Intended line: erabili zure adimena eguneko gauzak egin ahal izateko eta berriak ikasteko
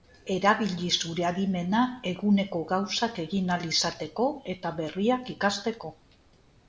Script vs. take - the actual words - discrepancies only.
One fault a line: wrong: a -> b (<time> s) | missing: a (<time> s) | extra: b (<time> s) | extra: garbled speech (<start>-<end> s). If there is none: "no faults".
no faults